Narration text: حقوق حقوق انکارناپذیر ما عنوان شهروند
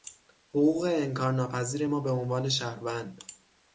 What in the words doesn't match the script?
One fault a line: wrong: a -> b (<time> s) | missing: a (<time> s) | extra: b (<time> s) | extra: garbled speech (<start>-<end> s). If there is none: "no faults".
missing: حقوق (0.8 s)
extra: به (2.0 s)